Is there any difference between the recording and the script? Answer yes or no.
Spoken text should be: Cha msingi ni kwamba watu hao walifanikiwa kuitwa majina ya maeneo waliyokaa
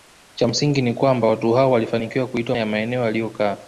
yes